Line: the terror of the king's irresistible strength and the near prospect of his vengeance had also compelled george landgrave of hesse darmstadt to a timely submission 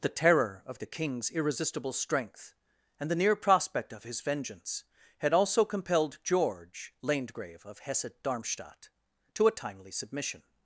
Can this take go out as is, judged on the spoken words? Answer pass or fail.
pass